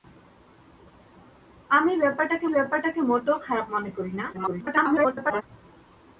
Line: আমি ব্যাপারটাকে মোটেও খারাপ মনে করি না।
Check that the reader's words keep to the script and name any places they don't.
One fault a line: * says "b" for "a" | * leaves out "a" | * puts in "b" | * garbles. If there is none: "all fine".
* puts in "ব্যাপারটাকে"
* garbles